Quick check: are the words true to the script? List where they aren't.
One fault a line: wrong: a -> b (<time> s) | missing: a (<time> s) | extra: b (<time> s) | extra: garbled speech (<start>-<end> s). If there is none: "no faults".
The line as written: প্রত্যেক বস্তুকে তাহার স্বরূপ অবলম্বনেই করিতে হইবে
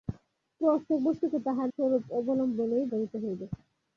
no faults